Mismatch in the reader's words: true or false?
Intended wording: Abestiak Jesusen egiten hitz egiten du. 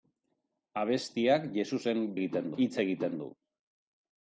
false